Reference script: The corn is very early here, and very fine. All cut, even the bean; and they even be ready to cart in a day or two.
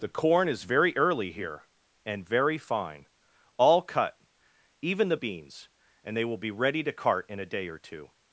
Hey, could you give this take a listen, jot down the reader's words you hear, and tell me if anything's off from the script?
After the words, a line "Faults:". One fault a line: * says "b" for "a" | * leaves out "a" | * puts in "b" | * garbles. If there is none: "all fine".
The corn is very early here, and very fine. All cut, even the beans; and they will be ready to cart in a day or two.
Faults:
* says "beans" for "bean"
* says "will" for "even"